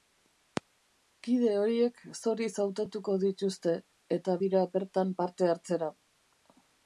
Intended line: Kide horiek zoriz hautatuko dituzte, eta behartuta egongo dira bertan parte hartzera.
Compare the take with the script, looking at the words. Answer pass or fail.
fail